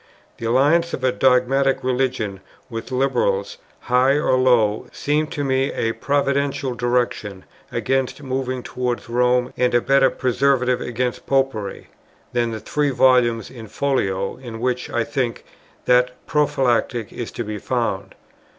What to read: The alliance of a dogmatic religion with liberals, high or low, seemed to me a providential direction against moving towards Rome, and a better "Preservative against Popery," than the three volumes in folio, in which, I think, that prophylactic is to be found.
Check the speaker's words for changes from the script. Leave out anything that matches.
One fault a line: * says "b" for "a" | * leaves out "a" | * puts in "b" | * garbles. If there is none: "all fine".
all fine